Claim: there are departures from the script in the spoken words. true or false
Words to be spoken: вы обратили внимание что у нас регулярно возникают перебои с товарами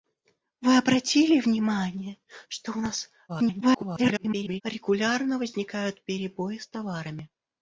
true